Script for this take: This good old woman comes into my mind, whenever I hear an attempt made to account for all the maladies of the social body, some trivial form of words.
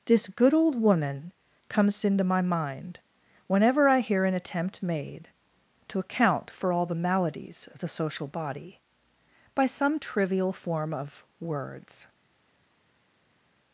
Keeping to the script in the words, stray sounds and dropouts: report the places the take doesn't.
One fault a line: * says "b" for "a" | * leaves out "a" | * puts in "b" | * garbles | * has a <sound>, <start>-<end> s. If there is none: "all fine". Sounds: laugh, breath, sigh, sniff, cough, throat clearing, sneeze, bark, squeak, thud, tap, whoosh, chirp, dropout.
* puts in "by"